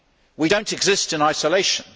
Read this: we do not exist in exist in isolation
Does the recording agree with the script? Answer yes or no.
no